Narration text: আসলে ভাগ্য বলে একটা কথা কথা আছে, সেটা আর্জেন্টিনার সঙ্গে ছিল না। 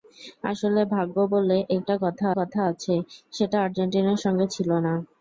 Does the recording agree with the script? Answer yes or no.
yes